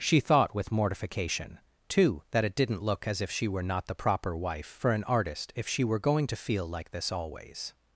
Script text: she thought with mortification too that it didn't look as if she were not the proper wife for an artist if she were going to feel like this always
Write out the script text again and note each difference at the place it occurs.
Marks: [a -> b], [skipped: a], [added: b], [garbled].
she thought with mortification too that it didn't look as if she were not the proper wife for an artist if she were going to feel like this always